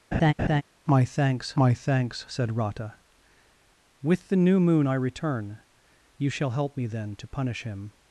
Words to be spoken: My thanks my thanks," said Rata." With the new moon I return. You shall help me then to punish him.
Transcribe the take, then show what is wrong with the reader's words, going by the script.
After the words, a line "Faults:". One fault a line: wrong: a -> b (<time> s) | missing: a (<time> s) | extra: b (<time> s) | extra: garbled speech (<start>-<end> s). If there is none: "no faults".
My thanks my thanks," said Rata." With the new moon I return. You shall help me then to punish him.
Faults:
no faults